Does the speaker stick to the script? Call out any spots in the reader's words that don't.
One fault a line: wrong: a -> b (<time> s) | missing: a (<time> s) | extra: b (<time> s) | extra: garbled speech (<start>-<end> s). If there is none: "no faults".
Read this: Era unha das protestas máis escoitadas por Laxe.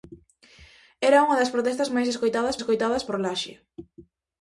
extra: escoitadas (2.6 s)